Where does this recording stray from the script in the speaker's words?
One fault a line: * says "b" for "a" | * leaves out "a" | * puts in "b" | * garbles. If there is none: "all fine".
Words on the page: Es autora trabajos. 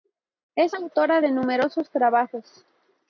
* puts in "de numerosos"